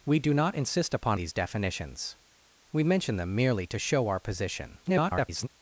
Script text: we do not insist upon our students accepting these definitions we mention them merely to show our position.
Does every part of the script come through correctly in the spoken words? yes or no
no